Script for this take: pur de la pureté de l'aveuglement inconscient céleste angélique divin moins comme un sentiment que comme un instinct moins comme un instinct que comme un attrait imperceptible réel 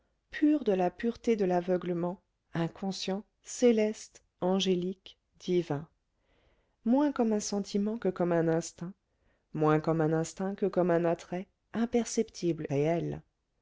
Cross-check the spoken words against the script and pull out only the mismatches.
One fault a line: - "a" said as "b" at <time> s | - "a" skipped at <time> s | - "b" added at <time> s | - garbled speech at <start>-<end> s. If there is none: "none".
none